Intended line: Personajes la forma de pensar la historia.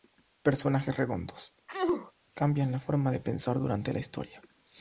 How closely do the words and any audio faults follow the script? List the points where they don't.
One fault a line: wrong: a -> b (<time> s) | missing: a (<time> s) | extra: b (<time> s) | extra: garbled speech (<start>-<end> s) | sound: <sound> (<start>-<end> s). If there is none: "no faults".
extra: redondos cambian (1.0 s)
sound: sneeze (1.7-2.1 s)
extra: durante (3.6 s)